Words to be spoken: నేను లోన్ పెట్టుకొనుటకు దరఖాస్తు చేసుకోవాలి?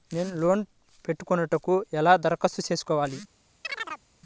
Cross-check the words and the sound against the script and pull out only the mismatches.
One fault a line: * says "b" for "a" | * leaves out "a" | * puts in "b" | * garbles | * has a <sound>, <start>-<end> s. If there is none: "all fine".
* puts in "ఎలా"
* has a chirp, 3.6-4.0 s